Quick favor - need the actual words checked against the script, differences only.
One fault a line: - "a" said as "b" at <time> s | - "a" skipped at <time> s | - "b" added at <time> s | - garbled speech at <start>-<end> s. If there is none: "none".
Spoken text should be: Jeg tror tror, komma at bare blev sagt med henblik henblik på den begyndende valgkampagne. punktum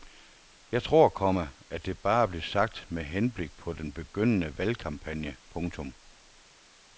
- "tror" skipped at 1.1 s
- "det" added at 1.9 s
- "henblik" skipped at 3.6 s